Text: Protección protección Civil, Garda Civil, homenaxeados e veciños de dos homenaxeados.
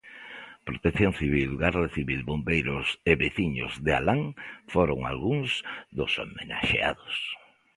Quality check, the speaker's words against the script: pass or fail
fail